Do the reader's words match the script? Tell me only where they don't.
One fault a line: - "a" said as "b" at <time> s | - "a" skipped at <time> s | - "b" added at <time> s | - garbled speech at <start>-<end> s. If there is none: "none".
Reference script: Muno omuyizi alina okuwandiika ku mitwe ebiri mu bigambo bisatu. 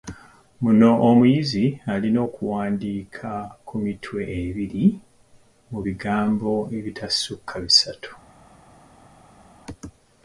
- "ebitasukka" added at 6.8 s